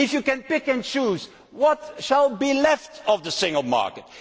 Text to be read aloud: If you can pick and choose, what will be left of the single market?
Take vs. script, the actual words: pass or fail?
pass